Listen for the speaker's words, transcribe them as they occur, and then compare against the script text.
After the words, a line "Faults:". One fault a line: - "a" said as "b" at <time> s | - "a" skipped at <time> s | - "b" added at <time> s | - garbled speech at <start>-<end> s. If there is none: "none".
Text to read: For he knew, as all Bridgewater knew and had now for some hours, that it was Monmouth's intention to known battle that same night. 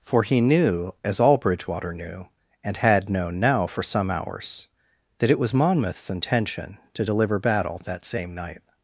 For he knew, as all Bridgewater knew and had known now for some hours, that it was Monmouth's intention to deliver battle that same night.
Faults:
- "known" added at 3.1 s
- "known" said as "deliver" at 7.0 s